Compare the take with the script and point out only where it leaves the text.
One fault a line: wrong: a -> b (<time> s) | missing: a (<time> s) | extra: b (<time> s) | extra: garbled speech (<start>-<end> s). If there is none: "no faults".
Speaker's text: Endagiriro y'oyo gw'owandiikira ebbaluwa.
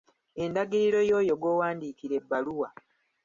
no faults